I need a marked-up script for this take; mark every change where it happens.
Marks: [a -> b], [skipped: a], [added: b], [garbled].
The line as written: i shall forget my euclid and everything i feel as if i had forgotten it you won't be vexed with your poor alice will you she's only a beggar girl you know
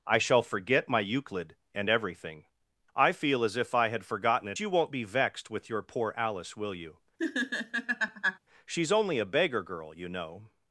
i shall forget my euclid and everything i feel as if i had forgotten it you won't be vexed with your poor alice will you she's only a beggar girl you know